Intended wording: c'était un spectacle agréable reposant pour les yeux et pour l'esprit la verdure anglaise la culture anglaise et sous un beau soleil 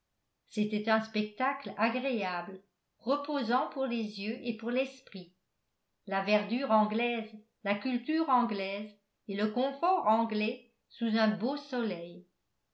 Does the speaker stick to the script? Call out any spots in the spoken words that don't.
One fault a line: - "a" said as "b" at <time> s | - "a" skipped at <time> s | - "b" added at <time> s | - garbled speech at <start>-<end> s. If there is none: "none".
- "le confort anglais" added at 9.3 s